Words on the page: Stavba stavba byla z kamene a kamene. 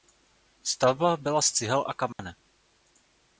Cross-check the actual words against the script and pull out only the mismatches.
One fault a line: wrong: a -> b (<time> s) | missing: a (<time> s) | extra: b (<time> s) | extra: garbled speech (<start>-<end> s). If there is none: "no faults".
missing: stavba (1.2 s)
wrong: kamene -> cihel (1.5 s)